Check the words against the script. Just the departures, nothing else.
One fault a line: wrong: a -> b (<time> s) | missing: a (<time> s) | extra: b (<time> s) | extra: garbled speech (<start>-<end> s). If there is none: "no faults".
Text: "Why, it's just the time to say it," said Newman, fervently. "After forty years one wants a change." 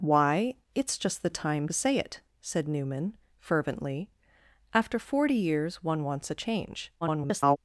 missing: to (1.7 s)
extra: garbled speech (7.0-7.6 s)